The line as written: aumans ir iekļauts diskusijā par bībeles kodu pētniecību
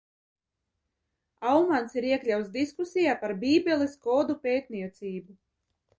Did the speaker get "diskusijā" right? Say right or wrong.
right